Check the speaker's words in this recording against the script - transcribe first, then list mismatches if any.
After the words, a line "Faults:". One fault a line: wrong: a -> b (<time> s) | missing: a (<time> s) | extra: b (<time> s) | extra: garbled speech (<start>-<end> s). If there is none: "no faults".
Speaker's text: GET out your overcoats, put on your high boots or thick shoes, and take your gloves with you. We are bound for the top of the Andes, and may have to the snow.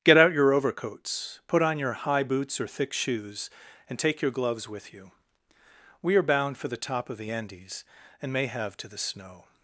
GET out your overcoats, put on your high boots or thick shoes, and take your gloves with you. We are bound for the top of the Andes, and may have to the snow.
Faults:
no faults